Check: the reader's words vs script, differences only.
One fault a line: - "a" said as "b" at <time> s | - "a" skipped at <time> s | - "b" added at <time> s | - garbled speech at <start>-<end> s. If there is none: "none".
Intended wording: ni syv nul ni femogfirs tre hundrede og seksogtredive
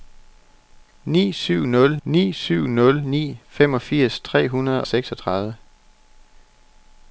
- "syv nul ni" added at 2.3 s
- "og" skipped at 4.8 s